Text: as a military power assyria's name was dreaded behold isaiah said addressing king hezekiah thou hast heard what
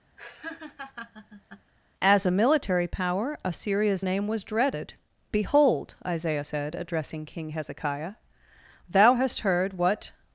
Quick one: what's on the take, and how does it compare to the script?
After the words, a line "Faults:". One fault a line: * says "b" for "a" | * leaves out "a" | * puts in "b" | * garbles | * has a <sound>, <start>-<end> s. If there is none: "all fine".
as a military power assyria's name was dreaded behold isaiah said addressing king hezekiah thou hast heard what
Faults:
* has a laugh, 0.2-1.7 s